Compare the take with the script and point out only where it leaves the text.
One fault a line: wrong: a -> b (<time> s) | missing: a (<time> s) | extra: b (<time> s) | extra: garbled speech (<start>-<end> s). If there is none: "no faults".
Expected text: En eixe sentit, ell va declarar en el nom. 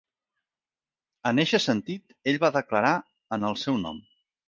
extra: seu (3.7 s)